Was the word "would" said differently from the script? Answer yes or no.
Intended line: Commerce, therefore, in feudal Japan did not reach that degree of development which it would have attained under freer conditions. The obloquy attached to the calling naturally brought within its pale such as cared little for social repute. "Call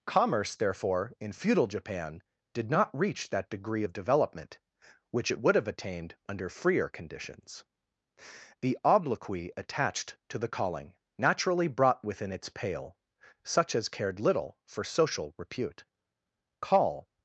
no